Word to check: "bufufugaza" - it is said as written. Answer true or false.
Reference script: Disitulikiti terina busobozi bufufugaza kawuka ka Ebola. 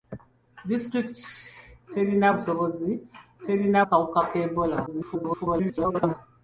false